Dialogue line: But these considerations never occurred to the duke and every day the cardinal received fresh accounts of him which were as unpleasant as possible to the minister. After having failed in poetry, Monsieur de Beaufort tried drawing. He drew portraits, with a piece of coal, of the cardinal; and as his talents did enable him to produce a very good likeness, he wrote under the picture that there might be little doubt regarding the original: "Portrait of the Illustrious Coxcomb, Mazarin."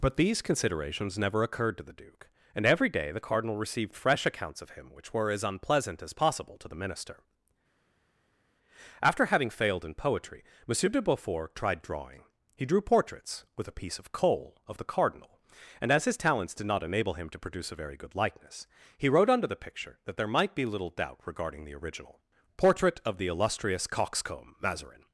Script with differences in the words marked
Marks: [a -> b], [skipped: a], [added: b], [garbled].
But these considerations never occurred to the duke and every day the cardinal received fresh accounts of him which were as unpleasant as possible to the minister. After having failed in poetry, Monsieur de Beaufort tried drawing. He drew portraits, with a piece of coal, of the cardinal; and as his talents did [added: not] enable him to produce a very good likeness, he wrote under the picture that there might be little doubt regarding the original: "Portrait of the Illustrious Coxcomb, Mazarin."